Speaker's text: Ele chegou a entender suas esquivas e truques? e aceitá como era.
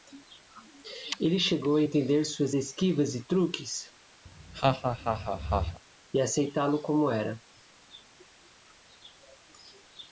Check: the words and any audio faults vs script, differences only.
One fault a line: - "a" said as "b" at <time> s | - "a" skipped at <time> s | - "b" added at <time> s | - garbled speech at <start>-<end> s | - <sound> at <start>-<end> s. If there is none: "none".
- laugh at 4.3-5.8 s
- "lo" added at 6.7 s